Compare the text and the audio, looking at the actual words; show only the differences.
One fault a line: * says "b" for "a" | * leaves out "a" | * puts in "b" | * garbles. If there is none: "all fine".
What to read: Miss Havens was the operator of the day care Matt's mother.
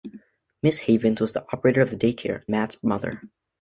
all fine